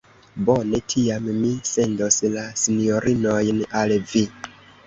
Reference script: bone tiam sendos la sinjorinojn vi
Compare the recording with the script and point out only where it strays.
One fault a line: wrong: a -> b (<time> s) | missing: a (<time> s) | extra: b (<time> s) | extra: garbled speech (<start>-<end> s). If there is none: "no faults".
extra: mi (1.4 s)
extra: al (3.8 s)